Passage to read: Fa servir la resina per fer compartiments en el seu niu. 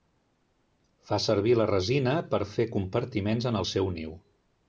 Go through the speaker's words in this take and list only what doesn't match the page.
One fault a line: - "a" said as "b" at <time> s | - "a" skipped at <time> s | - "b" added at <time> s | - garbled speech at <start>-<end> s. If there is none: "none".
none